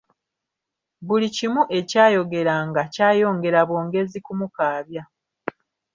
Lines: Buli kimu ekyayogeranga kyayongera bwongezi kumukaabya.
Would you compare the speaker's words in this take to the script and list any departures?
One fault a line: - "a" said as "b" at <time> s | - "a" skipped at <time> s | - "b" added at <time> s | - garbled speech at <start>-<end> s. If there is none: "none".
none